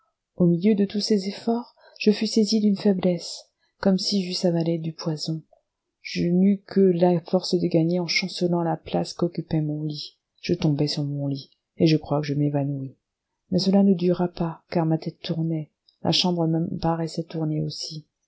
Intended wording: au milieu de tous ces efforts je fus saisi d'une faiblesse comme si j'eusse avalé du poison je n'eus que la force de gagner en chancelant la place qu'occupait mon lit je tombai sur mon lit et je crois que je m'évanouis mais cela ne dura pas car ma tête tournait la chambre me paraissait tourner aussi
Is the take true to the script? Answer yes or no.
yes